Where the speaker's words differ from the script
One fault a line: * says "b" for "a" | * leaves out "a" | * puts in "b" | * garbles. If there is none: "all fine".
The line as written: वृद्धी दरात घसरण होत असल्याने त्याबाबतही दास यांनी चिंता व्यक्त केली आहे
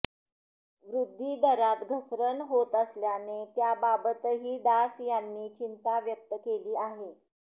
all fine